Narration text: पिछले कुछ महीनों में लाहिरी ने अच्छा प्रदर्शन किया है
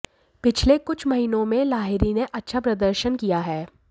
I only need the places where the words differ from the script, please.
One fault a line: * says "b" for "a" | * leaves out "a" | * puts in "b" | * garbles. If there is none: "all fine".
all fine